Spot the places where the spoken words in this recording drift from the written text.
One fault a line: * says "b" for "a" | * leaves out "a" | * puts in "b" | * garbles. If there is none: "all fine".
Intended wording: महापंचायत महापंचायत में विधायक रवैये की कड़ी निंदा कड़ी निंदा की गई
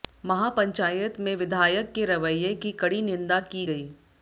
* leaves out "महापंचायत"
* puts in "के"
* leaves out "कड़ी निंदा"